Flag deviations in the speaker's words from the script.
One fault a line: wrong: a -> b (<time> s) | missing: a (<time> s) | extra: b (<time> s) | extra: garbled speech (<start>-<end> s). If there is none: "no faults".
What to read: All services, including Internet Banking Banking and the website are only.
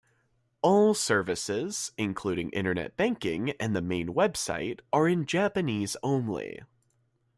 missing: Banking (3.5 s)
extra: main (3.8 s)
extra: in Japanese (5.1 s)